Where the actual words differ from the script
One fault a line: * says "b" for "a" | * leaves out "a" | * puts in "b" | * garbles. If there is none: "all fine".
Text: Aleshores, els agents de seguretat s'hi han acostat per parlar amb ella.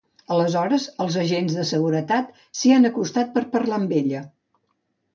all fine